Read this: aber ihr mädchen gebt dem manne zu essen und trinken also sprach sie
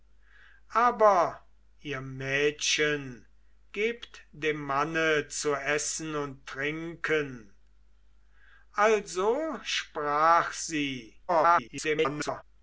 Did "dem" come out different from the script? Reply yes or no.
no